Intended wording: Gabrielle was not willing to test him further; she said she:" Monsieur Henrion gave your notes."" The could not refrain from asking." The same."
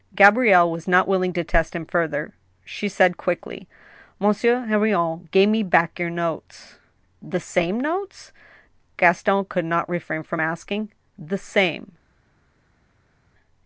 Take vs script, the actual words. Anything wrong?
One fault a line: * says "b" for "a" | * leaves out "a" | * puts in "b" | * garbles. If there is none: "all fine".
* says "quickly" for "she"
* puts in "me back"
* puts in "same notes Gaston"